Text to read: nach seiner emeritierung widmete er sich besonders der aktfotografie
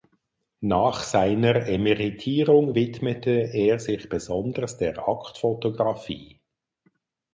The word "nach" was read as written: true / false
true